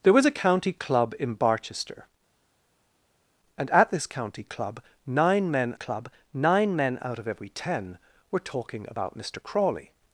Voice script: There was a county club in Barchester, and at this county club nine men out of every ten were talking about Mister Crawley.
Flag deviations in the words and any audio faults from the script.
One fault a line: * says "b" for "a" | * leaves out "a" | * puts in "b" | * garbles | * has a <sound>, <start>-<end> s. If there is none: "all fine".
* puts in "club nine men"